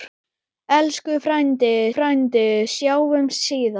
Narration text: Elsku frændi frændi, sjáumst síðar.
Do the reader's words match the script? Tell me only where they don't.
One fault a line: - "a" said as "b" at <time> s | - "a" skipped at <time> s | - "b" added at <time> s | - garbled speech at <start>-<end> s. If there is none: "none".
none